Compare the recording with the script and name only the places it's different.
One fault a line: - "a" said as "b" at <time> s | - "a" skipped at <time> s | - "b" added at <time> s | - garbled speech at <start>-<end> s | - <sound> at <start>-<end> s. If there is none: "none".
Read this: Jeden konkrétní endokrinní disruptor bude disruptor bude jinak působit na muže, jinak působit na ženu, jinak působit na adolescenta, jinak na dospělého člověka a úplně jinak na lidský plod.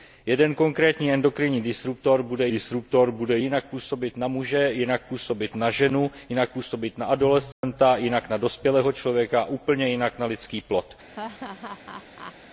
- dropout at 7.5-7.6 s
- laugh at 11.1-12.4 s